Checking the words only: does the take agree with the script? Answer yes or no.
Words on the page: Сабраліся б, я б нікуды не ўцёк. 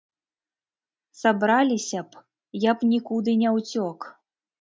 yes